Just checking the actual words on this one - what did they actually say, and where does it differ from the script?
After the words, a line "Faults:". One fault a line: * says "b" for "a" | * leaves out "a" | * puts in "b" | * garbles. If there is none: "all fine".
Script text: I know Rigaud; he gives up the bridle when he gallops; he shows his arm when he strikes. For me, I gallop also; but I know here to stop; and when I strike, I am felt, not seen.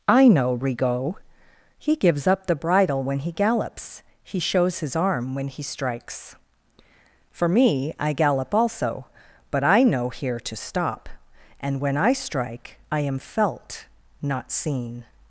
I know Rigaud; he gives up the bridle when he gallops; he shows his arm when he strikes. For me, I gallop also; but I know here to stop; and when I strike, I am felt, not seen.
Faults:
all fine